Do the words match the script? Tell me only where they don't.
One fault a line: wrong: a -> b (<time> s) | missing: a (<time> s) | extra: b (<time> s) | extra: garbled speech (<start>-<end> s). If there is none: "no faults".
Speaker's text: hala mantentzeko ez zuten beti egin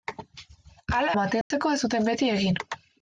no faults